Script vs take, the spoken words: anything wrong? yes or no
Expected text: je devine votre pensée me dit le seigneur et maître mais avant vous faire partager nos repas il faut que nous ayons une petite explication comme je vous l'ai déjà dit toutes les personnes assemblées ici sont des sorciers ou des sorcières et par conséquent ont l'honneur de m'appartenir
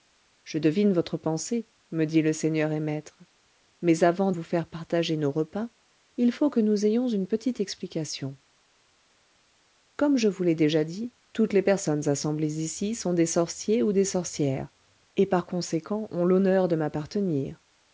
no